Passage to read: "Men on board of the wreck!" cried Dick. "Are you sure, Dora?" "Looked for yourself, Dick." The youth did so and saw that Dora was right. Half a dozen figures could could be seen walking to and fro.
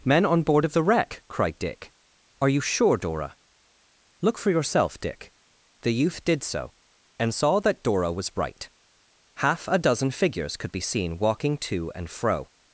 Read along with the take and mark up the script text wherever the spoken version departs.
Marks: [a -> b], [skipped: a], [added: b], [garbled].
"Men on board of the wreck!" cried Dick. "Are you sure, Dora?" ["Looked -> Look] for yourself, Dick." The youth did so and saw that Dora was right. Half a dozen figures could [skipped: could] be seen walking to and fro.